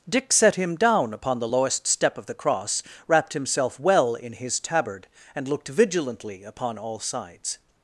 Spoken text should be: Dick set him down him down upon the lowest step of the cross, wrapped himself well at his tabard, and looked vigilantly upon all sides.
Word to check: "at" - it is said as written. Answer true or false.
false